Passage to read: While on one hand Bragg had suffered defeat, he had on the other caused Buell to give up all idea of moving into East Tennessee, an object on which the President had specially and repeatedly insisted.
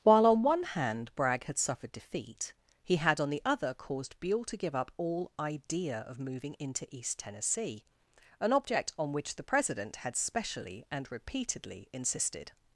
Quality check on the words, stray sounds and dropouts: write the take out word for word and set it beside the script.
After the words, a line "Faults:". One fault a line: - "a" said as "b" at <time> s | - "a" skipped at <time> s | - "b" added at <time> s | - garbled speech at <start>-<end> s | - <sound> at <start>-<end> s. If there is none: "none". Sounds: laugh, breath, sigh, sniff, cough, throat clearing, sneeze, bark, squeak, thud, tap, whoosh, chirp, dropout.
While on one hand Bragg had suffered defeat, he had on the other caused Buell to give up all idea of moving into East Tennessee, an object on which the President had specially and repeatedly insisted.
Faults:
none